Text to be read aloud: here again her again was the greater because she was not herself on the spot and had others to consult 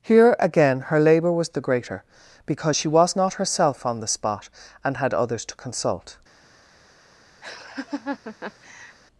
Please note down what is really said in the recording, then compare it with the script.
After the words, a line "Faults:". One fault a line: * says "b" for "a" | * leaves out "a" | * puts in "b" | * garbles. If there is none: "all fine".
here again her labour was the greater because she was not herself on the spot and had others to consult
Faults:
* says "labour" for "again"